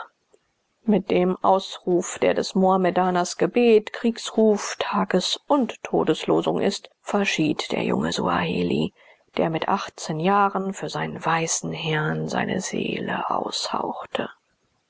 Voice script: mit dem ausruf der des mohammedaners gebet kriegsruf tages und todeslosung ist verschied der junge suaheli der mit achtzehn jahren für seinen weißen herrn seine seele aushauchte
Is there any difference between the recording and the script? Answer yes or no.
no